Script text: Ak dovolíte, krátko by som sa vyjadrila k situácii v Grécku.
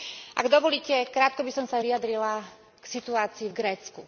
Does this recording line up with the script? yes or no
yes